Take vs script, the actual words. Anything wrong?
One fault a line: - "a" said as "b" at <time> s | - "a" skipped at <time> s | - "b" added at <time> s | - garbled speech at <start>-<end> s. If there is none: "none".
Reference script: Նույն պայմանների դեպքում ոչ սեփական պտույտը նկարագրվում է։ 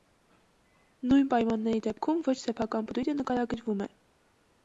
none